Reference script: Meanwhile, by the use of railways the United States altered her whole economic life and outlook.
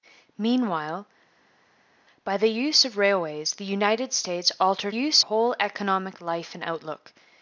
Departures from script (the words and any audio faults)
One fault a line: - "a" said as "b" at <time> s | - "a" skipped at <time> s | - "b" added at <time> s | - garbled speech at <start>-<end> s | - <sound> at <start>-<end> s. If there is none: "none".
- "her" said as "use" at 4.9 s